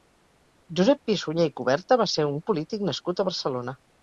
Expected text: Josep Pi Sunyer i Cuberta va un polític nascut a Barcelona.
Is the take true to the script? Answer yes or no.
no